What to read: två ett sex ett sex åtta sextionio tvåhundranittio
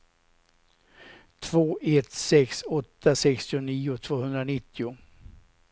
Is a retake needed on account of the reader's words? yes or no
yes